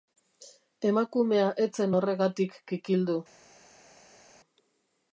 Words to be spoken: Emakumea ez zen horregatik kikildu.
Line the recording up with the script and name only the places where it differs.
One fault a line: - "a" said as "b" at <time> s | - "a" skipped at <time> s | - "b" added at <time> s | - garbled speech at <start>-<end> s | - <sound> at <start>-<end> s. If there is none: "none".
none